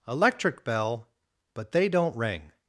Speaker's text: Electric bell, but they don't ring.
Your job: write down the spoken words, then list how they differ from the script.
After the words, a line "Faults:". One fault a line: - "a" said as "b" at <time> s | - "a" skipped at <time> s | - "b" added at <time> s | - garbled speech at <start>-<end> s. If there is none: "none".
Electric bell, but they don't ring.
Faults:
none